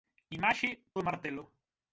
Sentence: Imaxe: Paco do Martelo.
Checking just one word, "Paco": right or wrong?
wrong